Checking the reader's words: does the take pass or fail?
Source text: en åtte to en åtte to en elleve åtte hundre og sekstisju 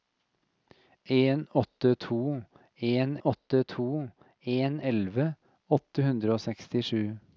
pass